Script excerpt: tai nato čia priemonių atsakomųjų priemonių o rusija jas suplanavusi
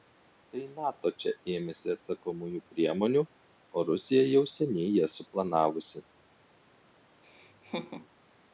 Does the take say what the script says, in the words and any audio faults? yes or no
no